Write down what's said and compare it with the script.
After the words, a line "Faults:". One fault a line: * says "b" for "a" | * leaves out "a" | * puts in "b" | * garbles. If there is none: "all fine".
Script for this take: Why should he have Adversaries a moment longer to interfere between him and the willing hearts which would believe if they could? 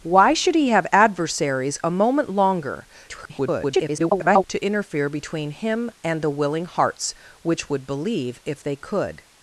Why should he have Adversaries a moment longer [garbled] to interfere between him and the willing hearts which would believe if they could?
Faults:
* garbles